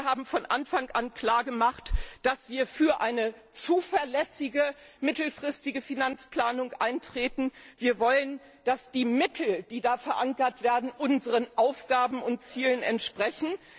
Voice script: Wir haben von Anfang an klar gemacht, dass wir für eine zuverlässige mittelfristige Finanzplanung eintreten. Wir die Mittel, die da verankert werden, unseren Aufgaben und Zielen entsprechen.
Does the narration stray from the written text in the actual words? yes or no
yes